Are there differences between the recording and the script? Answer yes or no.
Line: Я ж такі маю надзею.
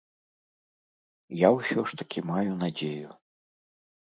yes